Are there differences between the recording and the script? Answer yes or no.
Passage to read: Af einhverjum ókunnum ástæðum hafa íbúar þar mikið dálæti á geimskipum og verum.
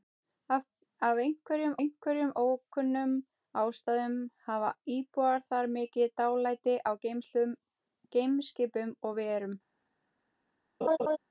yes